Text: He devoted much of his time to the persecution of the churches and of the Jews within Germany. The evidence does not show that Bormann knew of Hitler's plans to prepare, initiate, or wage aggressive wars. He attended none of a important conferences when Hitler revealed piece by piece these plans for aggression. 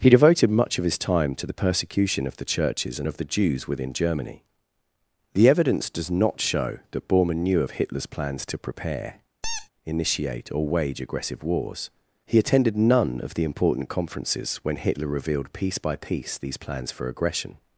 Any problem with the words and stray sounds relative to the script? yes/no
yes